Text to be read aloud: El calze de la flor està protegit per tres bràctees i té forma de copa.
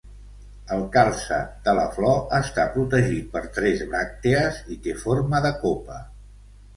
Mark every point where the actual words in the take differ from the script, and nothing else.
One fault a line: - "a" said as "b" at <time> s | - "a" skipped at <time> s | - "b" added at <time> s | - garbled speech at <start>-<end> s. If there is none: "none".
none